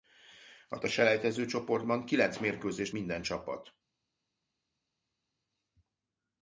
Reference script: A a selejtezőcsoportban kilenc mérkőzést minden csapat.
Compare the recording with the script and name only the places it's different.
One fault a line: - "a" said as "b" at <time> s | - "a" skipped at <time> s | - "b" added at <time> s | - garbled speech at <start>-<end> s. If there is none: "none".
none